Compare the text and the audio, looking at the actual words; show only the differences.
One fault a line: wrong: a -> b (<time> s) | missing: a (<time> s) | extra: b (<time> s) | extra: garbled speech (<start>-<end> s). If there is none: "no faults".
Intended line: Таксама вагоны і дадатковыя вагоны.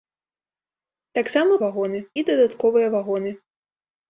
no faults